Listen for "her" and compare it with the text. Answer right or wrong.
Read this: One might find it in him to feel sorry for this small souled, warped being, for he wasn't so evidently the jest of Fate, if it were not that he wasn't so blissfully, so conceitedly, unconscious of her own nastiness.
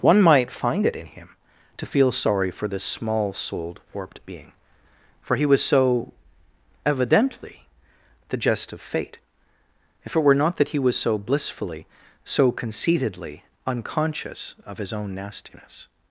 wrong